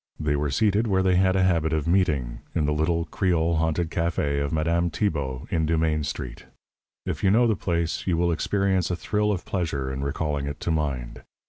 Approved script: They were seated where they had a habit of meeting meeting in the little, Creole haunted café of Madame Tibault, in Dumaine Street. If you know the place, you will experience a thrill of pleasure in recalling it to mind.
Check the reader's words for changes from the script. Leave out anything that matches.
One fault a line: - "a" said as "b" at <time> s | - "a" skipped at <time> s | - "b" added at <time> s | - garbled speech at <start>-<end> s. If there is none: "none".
- "meeting" skipped at 2.4 s